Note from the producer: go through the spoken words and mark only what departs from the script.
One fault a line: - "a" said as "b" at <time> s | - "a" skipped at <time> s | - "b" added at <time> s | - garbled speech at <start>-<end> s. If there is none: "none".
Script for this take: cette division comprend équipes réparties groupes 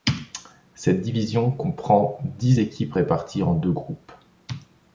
- "dix" added at 2.4 s
- "en deux" added at 3.4 s